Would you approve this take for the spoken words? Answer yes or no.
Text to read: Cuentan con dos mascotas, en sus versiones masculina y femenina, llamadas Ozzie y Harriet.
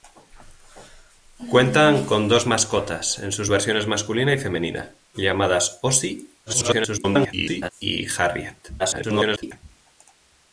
no